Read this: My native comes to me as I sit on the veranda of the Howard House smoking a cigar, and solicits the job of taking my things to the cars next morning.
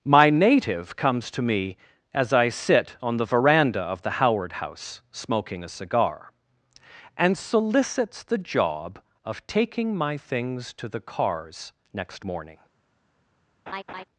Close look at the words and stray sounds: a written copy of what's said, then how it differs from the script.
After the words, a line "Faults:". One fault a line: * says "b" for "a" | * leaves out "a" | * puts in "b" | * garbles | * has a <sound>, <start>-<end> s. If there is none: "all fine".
My native comes to me as I sit on the veranda of the Howard House smoking a cigar, and solicits the job of taking my things to the cars next morning.
Faults:
* has a laugh, 13.7-14.0 s